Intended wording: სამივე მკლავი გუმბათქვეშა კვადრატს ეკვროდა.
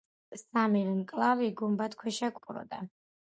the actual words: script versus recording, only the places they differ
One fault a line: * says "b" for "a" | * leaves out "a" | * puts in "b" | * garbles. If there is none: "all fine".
* leaves out "კვადრატს"